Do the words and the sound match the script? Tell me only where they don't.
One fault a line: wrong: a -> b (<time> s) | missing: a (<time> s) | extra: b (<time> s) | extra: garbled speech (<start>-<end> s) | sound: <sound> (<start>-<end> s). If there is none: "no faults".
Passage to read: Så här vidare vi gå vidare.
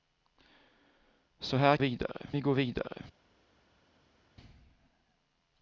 no faults